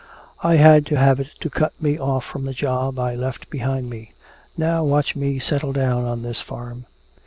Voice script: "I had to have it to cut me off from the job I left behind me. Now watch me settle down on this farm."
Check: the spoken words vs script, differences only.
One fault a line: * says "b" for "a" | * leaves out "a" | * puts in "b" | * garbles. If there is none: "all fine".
all fine